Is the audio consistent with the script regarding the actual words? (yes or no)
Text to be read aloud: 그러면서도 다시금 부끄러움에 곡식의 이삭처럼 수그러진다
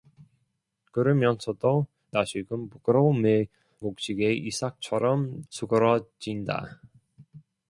yes